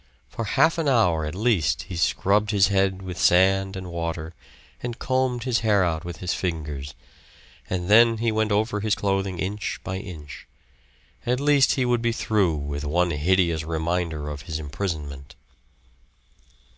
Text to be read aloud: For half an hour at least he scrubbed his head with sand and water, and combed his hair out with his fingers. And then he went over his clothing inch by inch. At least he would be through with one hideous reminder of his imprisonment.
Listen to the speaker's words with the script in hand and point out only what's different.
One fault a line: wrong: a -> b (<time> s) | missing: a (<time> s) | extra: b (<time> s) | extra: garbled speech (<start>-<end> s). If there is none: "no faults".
no faults